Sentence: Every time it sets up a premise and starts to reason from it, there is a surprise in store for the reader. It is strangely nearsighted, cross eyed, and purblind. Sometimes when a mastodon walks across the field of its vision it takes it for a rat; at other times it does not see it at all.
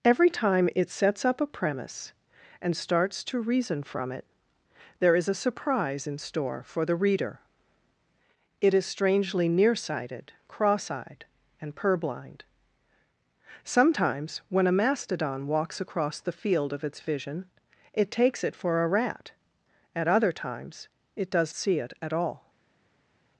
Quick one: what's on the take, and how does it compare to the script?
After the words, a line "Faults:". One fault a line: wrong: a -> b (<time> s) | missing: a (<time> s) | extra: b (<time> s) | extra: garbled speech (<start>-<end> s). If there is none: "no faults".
Every time it sets up a premise and starts to reason from it, there is a surprise in store for the reader. It is strangely nearsighted, cross eyed, and purblind. Sometimes when a mastodon walks across the field of its vision it takes it for a rat; at other times it does see it at all.
Faults:
missing: not (21.5 s)